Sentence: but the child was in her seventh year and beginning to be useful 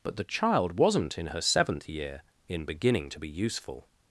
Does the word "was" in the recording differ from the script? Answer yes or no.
yes